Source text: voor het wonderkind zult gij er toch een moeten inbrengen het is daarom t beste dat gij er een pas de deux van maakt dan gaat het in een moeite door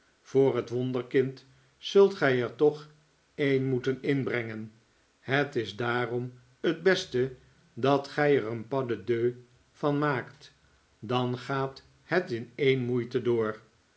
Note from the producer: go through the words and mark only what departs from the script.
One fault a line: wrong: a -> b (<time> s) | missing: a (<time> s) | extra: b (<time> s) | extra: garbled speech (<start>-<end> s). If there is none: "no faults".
no faults